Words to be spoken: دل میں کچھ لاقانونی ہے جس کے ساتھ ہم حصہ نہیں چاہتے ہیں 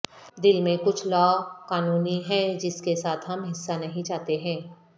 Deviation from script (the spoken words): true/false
false